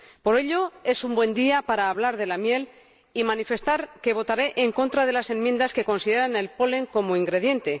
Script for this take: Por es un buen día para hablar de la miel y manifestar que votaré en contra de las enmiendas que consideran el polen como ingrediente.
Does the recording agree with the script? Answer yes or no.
no